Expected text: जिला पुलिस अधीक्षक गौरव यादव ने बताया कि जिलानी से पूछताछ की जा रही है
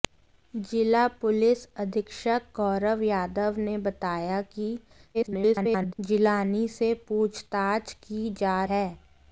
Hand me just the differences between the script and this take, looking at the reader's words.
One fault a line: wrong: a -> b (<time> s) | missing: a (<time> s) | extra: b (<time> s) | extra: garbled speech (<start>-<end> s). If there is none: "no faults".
extra: garbled speech (5.1-5.9 s)
missing: रही (8.6 s)